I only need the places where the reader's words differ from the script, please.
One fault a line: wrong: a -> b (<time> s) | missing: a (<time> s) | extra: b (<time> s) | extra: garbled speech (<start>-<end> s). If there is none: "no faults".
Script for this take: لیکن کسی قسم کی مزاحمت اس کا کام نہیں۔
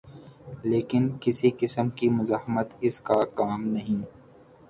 no faults